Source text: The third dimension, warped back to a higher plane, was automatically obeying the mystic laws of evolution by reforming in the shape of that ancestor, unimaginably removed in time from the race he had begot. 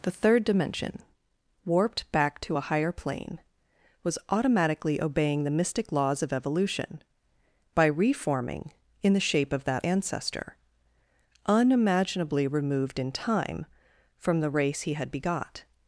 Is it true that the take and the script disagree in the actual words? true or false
false